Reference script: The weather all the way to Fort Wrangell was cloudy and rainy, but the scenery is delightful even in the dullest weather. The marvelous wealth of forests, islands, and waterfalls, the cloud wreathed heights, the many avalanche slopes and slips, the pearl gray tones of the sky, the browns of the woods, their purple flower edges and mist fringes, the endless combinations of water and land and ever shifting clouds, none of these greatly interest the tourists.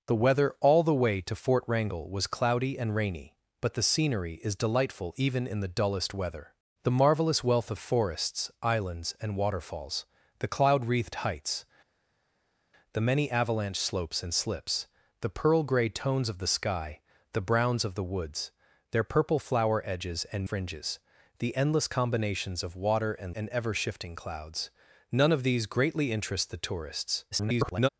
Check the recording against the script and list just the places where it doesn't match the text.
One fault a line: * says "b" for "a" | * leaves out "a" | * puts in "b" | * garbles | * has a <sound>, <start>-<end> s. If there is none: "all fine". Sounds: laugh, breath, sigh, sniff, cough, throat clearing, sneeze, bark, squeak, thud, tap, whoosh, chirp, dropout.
* leaves out "mist"
* leaves out "land"
* garbles